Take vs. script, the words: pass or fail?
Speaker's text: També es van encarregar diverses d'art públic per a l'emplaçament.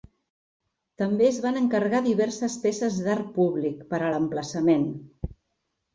fail